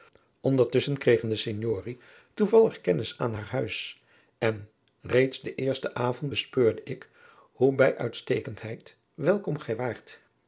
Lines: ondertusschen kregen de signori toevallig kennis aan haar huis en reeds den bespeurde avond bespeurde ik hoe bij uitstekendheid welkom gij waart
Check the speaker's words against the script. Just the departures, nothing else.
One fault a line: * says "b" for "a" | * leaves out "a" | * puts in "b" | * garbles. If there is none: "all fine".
* says "eersten" for "bespeurde"